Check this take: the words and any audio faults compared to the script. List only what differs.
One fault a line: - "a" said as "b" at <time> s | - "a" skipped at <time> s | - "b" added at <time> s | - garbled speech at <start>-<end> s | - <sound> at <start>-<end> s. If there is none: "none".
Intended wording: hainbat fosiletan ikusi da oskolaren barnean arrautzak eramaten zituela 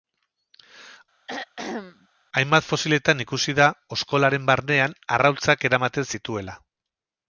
- throat clearing at 1.3-2.1 s